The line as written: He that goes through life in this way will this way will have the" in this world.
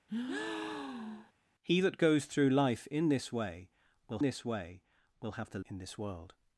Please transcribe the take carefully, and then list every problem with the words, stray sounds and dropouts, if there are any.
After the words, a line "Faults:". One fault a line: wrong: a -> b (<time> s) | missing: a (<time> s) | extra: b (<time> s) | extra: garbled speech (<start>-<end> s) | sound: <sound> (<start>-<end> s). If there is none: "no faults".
He that goes through life in this way will this way will have the" in this world.
Faults:
sound: breath (0.1-1.3 s)